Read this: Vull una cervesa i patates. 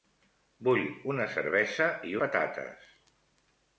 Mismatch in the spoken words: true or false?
false